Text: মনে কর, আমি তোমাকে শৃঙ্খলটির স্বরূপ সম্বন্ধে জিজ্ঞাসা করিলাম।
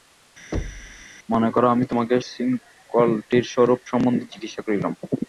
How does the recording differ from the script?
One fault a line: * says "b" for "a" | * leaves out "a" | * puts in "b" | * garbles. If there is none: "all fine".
all fine